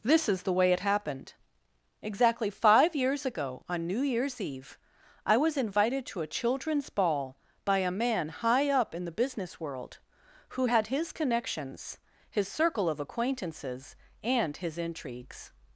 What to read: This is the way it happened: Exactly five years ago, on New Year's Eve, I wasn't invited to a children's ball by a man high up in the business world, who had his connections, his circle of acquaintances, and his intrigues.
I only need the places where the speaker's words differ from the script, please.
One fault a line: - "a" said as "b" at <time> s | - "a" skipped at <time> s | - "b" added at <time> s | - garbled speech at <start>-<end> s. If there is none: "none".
- "wasn't" said as "was" at 5.4 s